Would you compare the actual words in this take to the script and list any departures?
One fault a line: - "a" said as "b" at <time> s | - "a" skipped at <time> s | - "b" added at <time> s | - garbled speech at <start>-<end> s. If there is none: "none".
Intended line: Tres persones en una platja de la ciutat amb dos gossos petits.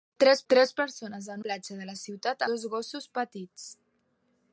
- "tres" added at 0.5 s
- "una" skipped at 1.4 s
- "amb" skipped at 2.5 s